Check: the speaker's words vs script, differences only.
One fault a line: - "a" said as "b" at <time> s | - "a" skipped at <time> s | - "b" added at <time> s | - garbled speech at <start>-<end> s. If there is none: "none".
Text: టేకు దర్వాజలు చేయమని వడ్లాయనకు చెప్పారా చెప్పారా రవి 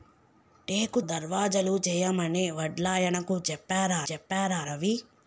none